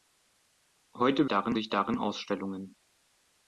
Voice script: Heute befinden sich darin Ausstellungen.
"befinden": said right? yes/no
no